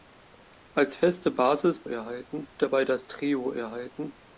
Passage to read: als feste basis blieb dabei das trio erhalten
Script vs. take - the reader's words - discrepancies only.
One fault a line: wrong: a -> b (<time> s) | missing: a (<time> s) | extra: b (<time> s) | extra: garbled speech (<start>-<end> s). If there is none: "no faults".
wrong: blieb -> erhalten (1.9 s)